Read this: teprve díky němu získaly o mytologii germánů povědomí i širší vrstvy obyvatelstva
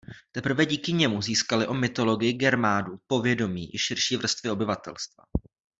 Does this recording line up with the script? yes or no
yes